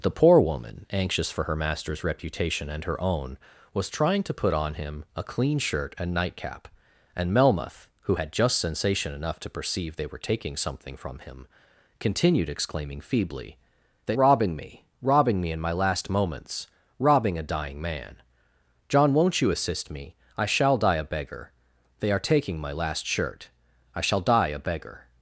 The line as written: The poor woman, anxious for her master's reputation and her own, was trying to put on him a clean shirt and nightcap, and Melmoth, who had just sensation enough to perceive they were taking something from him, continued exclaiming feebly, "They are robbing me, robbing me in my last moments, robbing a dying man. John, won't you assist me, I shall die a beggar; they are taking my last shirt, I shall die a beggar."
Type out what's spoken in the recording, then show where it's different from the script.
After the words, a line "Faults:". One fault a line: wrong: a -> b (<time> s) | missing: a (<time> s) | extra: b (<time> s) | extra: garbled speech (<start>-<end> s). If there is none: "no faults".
The poor woman, anxious for her master's reputation and her own, was trying to put on him a clean shirt and nightcap, and Melmoth, who had just sensation enough to perceive they were taking something from him, continued exclaiming feebly, "They robbing me, robbing me in my last moments, robbing a dying man. John, won't you assist me, I shall die a beggar; they are taking my last shirt, I shall die a beggar."
Faults:
missing: are (14.2 s)